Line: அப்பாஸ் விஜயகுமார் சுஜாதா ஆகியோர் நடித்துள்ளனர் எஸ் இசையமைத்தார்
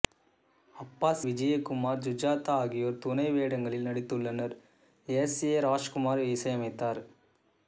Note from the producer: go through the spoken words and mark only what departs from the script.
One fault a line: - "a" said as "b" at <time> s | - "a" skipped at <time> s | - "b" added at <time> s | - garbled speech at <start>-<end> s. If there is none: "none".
- "துணை வேடங்களில்" added at 3.0 s
- "ஏ ராஜ்குமார்" added at 5.5 s